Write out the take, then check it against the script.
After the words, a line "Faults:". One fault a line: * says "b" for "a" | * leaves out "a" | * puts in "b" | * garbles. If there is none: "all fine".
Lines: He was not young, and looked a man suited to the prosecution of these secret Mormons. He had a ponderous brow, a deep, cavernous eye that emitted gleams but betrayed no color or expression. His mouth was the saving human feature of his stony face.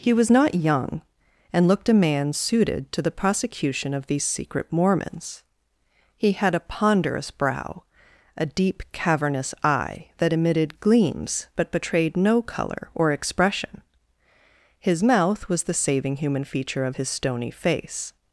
He was not young, and looked a man suited to the prosecution of these secret Mormons. He had a ponderous brow, a deep, cavernous eye that emitted gleams but betrayed no color or expression. His mouth was the saving human feature of his stony face.
Faults:
all fine